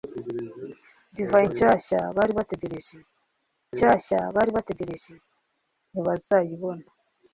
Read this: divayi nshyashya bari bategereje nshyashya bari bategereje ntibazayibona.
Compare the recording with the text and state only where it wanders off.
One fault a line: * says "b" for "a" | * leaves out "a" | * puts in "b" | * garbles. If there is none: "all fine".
all fine